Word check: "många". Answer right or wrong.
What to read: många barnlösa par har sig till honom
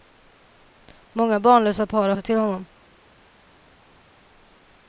right